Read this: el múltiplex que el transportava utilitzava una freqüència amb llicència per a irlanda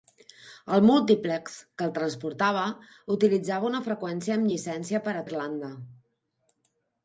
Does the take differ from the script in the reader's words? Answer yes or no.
no